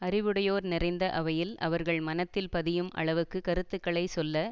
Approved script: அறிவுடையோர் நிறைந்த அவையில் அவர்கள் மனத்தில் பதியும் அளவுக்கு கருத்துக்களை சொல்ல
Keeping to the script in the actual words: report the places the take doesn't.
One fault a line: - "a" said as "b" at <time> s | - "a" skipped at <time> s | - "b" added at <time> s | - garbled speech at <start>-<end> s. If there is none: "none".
none